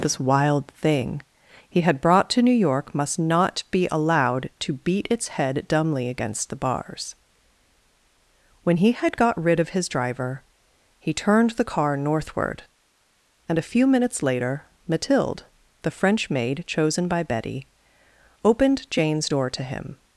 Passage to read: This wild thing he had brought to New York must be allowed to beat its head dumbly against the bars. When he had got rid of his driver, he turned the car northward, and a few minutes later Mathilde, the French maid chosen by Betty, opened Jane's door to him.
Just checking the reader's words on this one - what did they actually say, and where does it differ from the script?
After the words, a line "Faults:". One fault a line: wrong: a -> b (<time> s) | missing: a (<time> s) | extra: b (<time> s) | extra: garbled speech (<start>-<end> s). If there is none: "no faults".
This wild thing he had brought to New York must not be allowed to beat its head dumbly against the bars. When he had got rid of his driver, he turned the car northward, and a few minutes later Mathilde, the French maid chosen by Betty, opened Jane's door to him.
Faults:
extra: not (3.2 s)